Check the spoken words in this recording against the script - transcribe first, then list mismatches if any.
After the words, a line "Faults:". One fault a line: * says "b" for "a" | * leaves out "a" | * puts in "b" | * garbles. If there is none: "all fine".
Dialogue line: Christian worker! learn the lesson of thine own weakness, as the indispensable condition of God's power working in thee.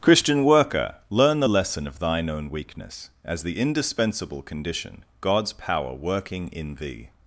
Christian worker! learn the lesson of thine own weakness, as the indispensable condition God's power working in thee.
Faults:
* leaves out "of"